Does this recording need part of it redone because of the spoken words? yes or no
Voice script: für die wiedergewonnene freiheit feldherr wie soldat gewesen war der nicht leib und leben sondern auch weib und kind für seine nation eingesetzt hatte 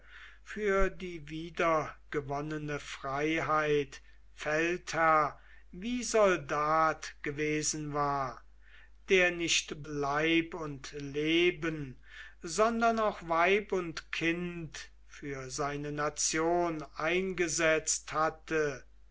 no